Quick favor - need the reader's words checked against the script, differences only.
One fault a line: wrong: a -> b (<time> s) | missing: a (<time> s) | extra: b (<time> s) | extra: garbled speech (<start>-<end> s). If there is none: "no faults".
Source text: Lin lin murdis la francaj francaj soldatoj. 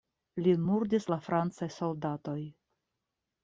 missing: lin (0.6 s)
missing: francaj (1.7 s)